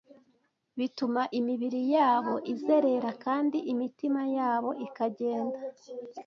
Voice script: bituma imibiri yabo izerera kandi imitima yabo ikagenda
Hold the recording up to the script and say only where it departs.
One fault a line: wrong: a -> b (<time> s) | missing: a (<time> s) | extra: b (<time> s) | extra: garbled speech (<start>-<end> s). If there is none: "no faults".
no faults